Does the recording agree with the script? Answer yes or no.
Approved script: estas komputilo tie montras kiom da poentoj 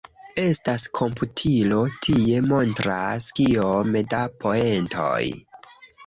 yes